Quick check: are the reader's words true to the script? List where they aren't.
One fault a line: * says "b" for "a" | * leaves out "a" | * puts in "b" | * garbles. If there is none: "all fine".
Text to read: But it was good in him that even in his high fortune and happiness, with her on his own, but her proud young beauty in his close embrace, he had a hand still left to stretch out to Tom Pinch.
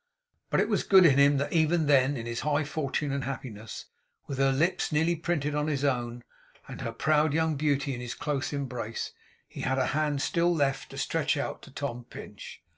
* puts in "then"
* puts in "lips nearly printed"
* says "and" for "but"